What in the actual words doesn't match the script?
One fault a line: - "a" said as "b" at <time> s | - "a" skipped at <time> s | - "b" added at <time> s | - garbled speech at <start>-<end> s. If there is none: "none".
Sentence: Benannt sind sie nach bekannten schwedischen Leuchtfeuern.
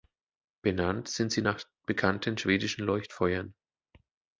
none